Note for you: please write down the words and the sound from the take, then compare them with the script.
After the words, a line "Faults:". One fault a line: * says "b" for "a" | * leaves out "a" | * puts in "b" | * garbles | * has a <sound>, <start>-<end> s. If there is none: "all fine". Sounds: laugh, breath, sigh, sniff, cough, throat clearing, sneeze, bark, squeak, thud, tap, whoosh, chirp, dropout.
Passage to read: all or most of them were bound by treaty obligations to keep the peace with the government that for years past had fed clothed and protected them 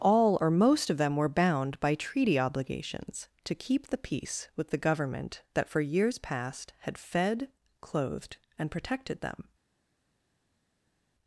all or most of them were bound by treaty obligations to keep the peace with the government that for years past had fed clothed and protected them
Faults:
all fine